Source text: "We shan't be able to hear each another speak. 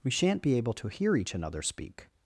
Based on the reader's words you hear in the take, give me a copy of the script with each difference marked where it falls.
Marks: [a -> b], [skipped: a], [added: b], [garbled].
"We shan't be able to hear each another speak.